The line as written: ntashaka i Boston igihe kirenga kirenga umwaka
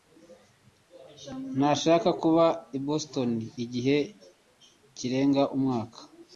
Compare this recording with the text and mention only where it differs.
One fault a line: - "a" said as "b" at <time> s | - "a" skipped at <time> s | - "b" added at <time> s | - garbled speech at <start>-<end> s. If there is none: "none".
- "kuba" added at 2.2 s
- "kirenga" skipped at 5.4 s